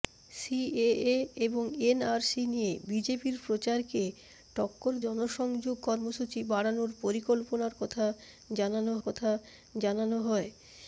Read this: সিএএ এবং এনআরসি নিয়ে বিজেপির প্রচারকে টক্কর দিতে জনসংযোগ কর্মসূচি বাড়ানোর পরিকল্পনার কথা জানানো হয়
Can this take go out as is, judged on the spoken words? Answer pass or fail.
fail